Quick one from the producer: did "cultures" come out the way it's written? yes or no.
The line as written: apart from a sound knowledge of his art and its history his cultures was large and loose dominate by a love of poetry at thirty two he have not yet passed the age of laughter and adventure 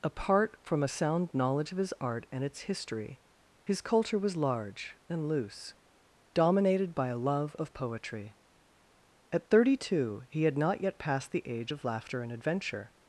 no